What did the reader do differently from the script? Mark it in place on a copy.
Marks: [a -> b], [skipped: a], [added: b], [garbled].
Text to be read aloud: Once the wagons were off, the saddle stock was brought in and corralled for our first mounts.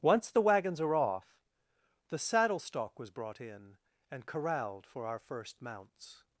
Once the wagons [were -> are] off, the saddle stock was brought in and corralled for our first mounts.